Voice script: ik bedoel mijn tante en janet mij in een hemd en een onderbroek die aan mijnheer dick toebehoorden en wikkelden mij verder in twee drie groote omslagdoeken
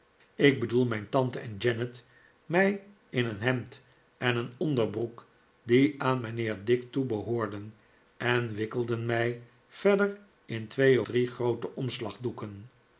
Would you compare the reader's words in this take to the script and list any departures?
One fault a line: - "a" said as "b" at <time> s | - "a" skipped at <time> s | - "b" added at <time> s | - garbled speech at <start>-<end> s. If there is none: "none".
none